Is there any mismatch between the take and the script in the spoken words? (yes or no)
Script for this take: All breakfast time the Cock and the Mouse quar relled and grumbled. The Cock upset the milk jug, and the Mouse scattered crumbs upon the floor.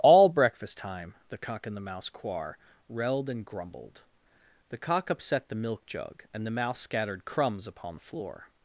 no